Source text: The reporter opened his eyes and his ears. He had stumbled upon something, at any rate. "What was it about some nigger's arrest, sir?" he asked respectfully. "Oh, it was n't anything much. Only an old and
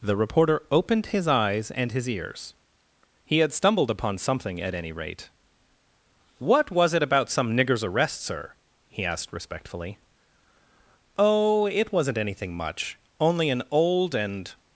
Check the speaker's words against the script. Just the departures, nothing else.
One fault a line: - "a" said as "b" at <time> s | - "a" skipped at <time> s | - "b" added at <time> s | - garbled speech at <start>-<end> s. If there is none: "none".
none